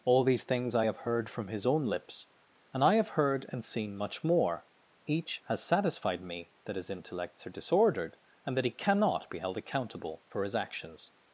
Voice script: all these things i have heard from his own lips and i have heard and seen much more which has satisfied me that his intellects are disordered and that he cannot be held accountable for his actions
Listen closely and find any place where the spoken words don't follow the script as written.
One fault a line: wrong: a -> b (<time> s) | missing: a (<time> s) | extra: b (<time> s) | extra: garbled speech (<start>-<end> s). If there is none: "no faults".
wrong: which -> each (5.1 s)